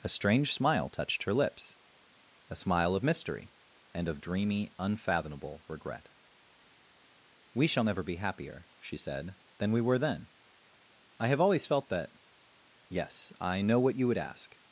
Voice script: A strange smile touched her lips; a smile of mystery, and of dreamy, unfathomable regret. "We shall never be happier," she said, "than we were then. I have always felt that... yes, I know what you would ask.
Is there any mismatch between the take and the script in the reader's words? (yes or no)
no